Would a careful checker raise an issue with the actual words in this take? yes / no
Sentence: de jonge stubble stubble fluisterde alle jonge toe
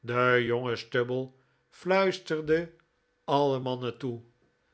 yes